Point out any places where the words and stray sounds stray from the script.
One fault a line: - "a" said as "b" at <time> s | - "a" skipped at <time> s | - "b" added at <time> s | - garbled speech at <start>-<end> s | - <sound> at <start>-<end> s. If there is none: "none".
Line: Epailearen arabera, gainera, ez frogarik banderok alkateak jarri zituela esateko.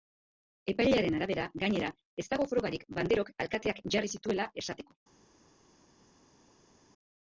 - "dago" added at 2.3 s